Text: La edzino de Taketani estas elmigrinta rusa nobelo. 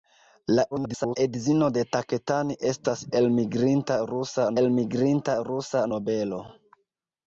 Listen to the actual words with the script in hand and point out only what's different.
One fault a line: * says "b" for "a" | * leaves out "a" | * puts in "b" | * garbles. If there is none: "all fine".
* garbles
* puts in "elmigrinta rusa"